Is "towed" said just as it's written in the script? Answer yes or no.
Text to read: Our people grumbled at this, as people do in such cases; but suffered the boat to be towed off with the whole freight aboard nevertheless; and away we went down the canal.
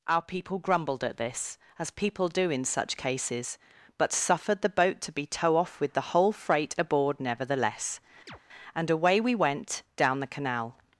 no